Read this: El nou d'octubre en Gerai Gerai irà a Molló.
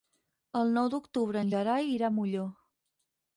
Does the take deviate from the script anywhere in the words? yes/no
yes